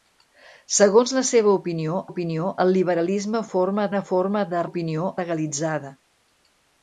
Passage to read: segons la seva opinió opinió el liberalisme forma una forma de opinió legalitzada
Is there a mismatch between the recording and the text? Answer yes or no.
no